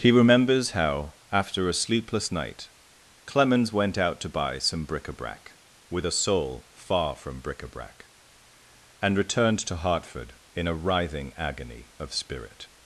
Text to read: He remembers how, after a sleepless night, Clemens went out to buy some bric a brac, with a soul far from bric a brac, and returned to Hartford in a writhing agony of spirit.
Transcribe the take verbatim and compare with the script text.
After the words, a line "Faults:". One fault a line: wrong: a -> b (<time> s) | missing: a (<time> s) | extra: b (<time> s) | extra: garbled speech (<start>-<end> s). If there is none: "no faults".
He remembers how, after a sleepless night, Clemens went out to buy some bric a brac, with a soul far from bric a brac, and returned to Hartford in a writhing agony of spirit.
Faults:
no faults